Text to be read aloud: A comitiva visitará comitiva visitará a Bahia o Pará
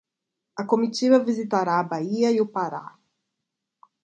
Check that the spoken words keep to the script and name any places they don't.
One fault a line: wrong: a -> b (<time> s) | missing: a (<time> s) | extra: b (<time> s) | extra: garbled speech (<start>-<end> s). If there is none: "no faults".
missing: comitiva visitará (1.8 s)
extra: e (2.3 s)